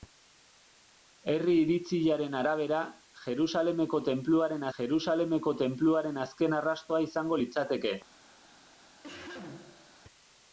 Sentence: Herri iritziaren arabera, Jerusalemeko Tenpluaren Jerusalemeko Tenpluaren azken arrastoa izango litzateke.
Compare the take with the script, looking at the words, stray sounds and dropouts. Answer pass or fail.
fail